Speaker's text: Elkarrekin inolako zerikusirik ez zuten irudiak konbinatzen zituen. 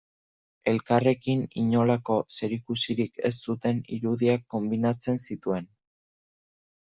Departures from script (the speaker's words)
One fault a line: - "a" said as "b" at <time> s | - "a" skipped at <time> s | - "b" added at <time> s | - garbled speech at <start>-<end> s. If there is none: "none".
none